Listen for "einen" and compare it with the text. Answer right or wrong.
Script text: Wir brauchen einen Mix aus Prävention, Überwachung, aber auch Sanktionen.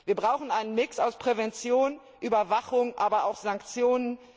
right